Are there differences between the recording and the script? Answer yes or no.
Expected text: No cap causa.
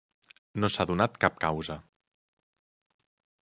yes